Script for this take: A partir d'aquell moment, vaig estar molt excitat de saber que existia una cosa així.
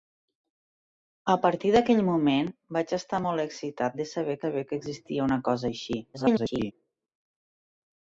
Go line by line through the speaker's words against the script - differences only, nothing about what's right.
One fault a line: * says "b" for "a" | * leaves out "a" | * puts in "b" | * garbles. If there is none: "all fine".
* puts in "saber"
* garbles